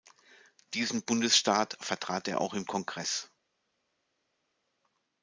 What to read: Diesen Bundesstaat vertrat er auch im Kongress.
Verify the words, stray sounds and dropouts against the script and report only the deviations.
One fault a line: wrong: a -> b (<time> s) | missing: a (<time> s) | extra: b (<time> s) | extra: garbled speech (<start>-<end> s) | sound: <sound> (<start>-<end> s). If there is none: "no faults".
no faults